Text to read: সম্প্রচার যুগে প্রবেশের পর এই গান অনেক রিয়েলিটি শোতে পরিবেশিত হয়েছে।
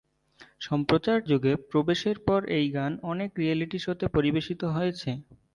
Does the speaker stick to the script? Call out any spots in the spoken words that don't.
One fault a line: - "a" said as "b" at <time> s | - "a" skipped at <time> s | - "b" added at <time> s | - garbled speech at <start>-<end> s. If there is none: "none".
none